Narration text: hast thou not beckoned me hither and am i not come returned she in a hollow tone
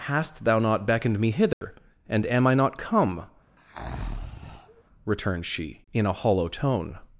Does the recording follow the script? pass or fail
pass